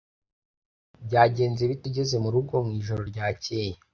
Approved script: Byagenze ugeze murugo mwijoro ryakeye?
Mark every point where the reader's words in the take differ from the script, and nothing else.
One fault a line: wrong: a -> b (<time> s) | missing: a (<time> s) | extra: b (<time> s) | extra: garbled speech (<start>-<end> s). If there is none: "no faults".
extra: bite (1.7 s)